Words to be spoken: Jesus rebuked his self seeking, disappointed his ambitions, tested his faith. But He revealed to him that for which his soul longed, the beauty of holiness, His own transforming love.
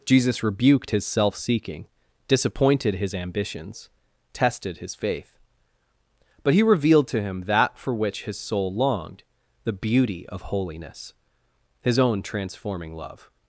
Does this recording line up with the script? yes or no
yes